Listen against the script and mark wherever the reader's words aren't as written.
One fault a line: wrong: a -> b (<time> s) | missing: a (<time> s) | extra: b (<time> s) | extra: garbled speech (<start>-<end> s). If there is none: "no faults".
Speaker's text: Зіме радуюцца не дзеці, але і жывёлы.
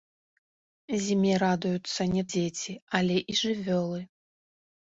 no faults